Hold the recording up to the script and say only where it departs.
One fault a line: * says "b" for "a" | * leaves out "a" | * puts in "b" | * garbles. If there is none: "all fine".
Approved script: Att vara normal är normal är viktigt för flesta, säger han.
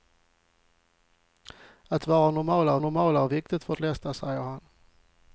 all fine